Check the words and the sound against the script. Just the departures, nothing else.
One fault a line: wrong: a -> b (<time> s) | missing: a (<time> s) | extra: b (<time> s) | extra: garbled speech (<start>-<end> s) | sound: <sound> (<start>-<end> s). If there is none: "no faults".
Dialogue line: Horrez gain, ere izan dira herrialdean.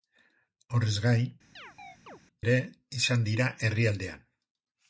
sound: chirp (1.6-2.2 s)